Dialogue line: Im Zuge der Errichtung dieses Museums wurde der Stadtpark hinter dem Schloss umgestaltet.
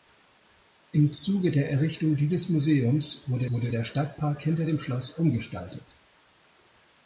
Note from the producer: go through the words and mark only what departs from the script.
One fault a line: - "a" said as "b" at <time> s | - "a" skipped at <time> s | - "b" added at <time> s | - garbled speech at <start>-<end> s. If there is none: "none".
- "wurde" added at 3.5 s